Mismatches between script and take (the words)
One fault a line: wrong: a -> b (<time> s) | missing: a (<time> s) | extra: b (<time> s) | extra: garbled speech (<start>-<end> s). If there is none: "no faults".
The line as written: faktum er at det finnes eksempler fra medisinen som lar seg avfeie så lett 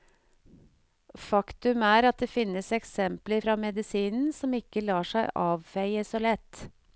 extra: ikke (4.5 s)